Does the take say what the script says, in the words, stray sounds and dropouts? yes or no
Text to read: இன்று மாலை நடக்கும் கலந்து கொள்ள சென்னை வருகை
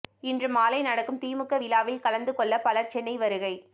no